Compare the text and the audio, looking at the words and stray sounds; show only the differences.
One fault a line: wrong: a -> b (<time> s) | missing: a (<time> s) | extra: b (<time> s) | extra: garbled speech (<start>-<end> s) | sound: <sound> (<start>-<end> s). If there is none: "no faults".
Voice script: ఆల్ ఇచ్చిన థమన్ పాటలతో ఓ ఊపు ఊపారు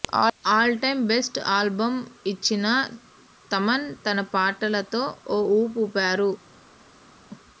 extra: టైమ్ బెస్ట్ ఆల్బమ్ (0.8 s)
extra: తన (4.0 s)